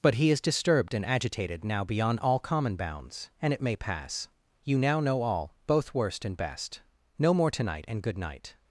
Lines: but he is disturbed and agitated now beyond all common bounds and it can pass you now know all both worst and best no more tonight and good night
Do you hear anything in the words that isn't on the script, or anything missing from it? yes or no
yes